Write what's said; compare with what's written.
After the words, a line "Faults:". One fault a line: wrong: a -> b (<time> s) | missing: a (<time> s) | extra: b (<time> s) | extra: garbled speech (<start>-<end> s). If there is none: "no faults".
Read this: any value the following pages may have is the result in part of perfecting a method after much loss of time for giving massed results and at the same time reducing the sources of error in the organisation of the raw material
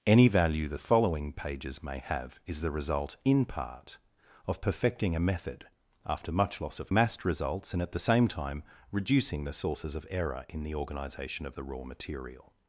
any value the following pages may have is the result in part of perfecting a method after much loss of massed results and at the same time reducing the sources of error in the organisation of the raw material
Faults:
missing: time for giving (6.9 s)